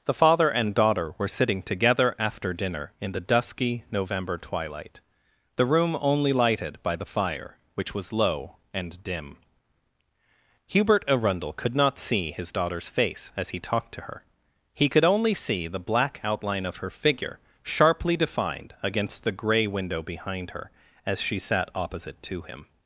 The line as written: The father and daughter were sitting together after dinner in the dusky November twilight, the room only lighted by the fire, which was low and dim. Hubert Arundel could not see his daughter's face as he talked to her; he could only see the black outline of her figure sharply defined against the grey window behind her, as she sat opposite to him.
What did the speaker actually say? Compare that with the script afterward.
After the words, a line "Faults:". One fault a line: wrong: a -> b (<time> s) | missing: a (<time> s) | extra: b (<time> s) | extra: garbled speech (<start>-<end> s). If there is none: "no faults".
The father and daughter were sitting together after dinner in the dusky November twilight, the room only lighted by the fire, which was low and dim. Hubert Arundel could not see his daughter's face as he talked to her; he could only see the black outline of her figure sharply defined against the grey window behind her, as she sat opposite to him.
Faults:
no faults